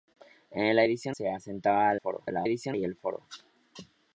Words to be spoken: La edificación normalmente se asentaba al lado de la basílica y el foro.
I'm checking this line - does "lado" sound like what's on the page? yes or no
no